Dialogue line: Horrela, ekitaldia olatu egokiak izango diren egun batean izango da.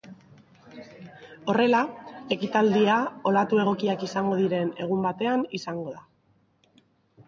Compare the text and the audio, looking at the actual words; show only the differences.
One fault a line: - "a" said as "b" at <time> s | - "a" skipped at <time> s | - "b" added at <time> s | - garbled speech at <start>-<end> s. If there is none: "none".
none